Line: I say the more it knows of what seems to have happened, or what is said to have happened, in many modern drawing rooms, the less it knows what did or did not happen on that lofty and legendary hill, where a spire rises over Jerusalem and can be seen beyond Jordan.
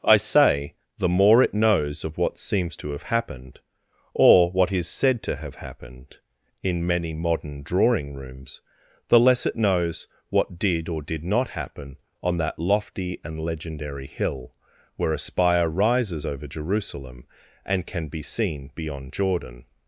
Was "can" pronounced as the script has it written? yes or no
yes